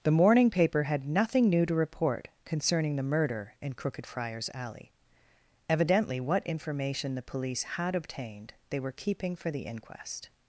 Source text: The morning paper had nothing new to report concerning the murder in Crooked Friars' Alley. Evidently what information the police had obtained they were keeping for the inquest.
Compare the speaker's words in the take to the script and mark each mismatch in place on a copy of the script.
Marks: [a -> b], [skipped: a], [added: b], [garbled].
The morning paper had nothing new to report concerning the murder in Crooked Friars' Alley. Evidently what information the police had obtained they were keeping for the inquest.